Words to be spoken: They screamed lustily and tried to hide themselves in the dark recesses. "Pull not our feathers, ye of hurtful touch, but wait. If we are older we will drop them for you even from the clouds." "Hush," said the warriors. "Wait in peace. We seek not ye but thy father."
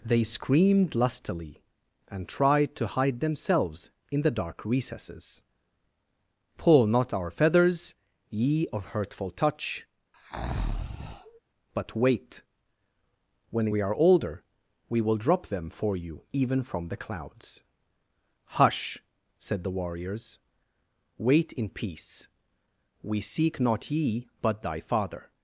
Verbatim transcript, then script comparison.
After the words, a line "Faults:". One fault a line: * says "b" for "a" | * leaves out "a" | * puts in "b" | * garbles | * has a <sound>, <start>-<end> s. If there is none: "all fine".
They screamed lustily and tried to hide themselves in the dark recesses. "Pull not our feathers, ye of hurtful touch, but wait. When we are older we will drop them for you even from the clouds." "Hush," said the warriors. "Wait in peace. We seek not ye but thy father."
Faults:
* has a breath, 10.1-11.4 s
* says "When" for "If"